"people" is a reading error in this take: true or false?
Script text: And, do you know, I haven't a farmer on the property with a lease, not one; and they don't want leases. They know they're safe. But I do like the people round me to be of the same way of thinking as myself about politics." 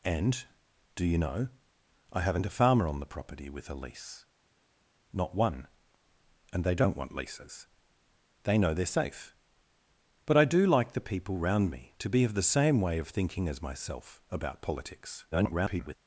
false